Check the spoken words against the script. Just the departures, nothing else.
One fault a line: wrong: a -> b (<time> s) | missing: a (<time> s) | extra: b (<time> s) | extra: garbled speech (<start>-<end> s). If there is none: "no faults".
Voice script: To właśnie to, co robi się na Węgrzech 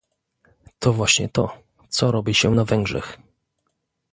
no faults